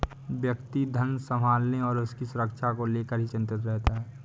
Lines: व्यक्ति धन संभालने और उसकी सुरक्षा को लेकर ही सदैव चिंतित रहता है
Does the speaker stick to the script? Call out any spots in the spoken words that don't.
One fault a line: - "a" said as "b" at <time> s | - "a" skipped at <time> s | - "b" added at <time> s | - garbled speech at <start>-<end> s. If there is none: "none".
- "सदैव" skipped at 3.3 s